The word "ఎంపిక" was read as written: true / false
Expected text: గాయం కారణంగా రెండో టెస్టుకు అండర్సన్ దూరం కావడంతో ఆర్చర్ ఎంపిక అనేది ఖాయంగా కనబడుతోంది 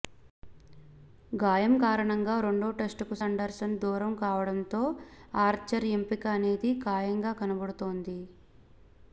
true